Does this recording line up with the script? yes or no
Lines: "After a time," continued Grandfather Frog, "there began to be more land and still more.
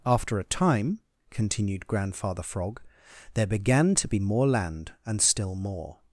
yes